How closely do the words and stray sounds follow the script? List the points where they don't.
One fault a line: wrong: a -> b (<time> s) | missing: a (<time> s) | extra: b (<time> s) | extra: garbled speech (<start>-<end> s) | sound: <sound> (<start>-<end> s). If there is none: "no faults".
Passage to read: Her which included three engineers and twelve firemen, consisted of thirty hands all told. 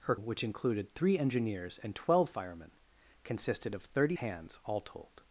no faults